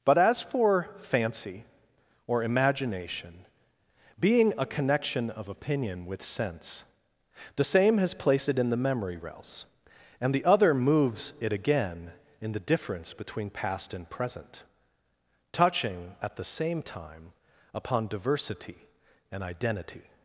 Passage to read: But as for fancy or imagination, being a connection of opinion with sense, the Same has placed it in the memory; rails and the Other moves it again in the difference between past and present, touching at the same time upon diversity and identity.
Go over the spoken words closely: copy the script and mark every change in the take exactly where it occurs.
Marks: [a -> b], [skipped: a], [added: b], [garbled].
But as for fancy or imagination, being a connection of opinion with sense, the Same has placed it in the memory; rails and the Other moves it again in the difference between past and present, touching at the same time upon diversity and identity.